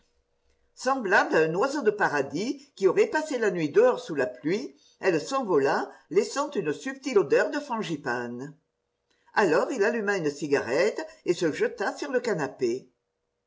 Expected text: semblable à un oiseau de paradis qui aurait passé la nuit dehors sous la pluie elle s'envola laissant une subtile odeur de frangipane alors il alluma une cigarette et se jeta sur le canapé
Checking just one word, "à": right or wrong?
right